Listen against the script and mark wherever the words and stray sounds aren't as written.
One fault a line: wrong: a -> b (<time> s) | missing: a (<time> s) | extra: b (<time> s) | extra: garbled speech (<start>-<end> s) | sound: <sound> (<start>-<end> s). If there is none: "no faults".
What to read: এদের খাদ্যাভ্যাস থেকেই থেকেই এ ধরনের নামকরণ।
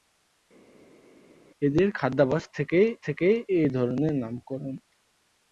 no faults